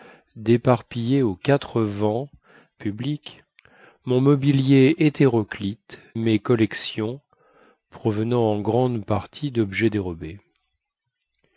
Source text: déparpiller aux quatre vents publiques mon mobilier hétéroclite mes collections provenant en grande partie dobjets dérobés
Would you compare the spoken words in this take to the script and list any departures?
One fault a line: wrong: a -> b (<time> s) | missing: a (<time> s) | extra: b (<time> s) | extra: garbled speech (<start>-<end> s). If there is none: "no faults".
no faults